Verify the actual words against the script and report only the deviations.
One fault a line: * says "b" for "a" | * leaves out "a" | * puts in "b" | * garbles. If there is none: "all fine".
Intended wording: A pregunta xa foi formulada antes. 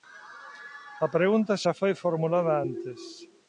all fine